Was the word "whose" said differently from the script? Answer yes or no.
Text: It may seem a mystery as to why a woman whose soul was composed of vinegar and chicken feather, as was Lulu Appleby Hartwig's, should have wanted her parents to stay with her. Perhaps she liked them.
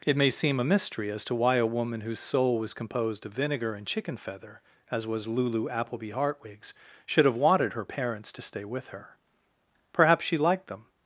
no